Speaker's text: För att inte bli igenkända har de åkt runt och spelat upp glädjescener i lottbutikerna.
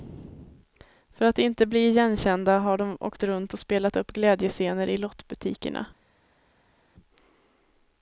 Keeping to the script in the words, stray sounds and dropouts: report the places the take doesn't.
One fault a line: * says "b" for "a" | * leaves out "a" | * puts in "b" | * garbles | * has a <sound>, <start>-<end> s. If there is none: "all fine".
all fine